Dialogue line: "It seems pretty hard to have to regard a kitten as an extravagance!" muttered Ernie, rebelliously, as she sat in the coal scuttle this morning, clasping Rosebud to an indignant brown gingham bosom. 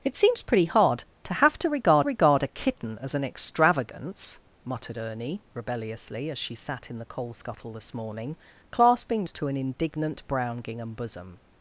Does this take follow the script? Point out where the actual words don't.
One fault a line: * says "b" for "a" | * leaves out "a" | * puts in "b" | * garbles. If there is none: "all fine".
* puts in "regard"
* leaves out "Rosebud"